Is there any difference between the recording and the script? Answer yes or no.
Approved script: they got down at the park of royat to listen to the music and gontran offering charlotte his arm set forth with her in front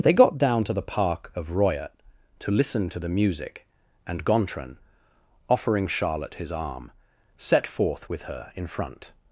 yes